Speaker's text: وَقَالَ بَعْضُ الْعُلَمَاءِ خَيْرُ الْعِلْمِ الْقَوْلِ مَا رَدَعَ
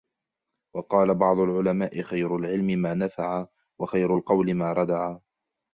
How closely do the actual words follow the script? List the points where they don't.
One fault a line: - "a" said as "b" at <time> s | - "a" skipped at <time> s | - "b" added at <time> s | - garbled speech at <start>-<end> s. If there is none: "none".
- "مَا نَفَعَ وَخَيْرُ" added at 2.6 s